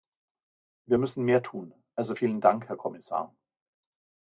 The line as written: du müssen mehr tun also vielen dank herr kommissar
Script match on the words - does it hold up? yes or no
no